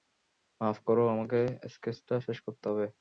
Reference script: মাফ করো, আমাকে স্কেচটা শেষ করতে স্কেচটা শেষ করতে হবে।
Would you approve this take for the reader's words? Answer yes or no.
no